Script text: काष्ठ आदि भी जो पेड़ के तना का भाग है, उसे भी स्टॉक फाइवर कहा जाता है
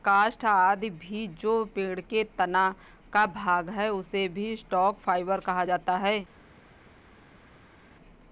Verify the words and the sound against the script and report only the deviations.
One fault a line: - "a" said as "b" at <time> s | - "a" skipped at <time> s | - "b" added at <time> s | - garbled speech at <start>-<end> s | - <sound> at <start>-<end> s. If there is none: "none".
none